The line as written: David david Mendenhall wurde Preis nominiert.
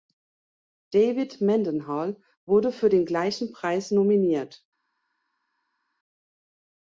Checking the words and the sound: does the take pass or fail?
fail